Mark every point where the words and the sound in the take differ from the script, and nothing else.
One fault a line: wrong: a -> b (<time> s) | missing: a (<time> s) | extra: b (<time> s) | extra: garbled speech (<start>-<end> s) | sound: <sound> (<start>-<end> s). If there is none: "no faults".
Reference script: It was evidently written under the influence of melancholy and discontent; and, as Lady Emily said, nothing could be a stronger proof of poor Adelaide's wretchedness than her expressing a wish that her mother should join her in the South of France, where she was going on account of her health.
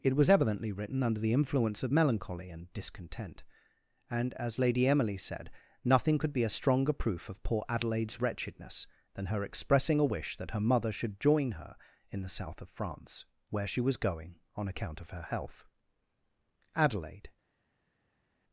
extra: Adelaide (16.8 s)